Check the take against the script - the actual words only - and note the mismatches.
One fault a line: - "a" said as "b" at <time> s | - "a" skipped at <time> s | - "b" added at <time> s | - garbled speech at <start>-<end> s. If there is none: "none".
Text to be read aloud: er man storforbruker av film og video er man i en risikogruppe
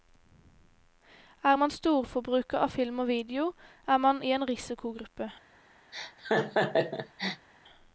none